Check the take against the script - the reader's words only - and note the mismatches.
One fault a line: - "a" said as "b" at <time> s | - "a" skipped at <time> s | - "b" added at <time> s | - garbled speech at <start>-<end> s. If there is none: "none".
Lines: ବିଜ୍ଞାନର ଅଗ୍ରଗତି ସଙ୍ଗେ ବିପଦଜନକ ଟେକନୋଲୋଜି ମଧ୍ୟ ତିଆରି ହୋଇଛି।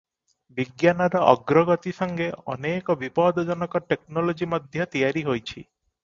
- "ଅନେକ" added at 2.5 s